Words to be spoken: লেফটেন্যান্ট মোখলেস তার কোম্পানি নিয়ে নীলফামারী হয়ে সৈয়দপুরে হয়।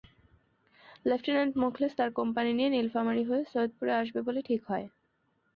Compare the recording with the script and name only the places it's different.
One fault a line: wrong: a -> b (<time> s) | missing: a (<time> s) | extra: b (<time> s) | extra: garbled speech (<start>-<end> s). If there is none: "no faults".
extra: আসবে বলে ঠিক (4.0 s)